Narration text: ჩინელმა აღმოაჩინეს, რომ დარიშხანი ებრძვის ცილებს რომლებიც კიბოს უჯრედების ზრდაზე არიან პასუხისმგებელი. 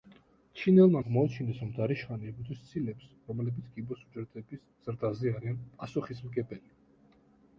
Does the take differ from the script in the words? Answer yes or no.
no